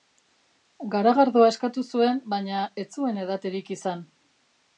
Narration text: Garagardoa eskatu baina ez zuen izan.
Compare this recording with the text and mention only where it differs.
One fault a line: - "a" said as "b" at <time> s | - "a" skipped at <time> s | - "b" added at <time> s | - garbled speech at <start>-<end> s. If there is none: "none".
- "zuen" added at 1.9 s
- "edaterik" added at 3.3 s